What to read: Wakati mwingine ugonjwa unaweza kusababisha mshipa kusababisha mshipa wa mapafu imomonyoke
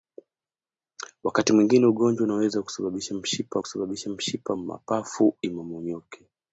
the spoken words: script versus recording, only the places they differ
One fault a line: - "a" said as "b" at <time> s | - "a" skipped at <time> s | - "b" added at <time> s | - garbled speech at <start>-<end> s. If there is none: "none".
none